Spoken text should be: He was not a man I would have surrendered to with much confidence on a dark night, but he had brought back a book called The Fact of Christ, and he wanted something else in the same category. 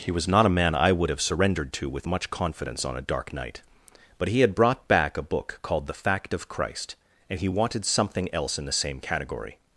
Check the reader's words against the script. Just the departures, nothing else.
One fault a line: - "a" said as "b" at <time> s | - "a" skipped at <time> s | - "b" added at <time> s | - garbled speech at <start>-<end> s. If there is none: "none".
none